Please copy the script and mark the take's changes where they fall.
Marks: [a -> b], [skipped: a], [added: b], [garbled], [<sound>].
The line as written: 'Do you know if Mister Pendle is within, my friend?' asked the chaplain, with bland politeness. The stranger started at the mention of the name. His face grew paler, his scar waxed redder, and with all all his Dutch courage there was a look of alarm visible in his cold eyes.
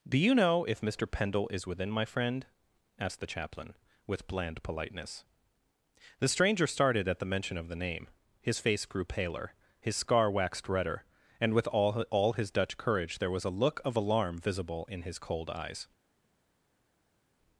'Do you know if Mister Pendle is within, my friend?' asked the chaplain, with bland politeness. The stranger started at the mention of the name. His face grew paler, his scar waxed redder, and with all all his Dutch courage there was a look of alarm visible in his cold eyes.